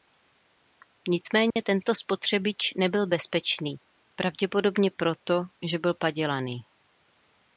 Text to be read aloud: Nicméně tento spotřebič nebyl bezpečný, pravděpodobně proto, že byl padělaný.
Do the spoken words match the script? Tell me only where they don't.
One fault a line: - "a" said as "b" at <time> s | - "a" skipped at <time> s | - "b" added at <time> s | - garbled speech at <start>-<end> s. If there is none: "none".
none